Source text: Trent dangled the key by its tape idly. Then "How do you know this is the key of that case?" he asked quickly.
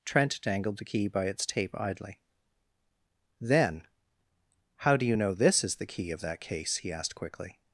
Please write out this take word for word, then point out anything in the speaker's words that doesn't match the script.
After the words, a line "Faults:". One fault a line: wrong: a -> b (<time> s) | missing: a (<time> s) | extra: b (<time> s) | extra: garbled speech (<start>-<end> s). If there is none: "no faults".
Trent dangled the key by its tape idly. Then "How do you know this is the key of that case?" he asked quickly.
Faults:
no faults